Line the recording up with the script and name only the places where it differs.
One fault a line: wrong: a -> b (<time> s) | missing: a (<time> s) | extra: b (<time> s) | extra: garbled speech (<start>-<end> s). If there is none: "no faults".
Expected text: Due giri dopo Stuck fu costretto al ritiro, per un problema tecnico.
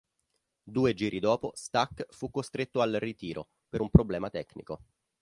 no faults